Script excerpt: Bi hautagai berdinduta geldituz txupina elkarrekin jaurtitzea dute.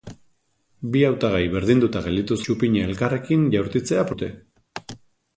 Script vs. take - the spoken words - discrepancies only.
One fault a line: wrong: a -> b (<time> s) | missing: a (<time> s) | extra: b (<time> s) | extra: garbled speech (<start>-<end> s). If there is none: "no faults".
no faults